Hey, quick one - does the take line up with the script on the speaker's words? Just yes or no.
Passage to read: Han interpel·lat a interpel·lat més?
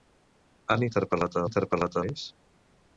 yes